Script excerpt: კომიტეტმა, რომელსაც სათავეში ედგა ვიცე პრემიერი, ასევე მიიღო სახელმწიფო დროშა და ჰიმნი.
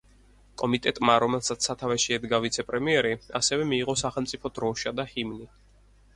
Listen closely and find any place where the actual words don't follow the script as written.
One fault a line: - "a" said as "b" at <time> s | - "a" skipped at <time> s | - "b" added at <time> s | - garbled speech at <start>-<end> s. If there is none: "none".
none